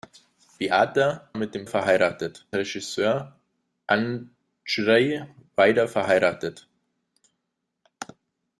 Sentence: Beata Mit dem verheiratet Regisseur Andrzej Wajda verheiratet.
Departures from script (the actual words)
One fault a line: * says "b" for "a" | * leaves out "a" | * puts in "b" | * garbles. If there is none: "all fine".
all fine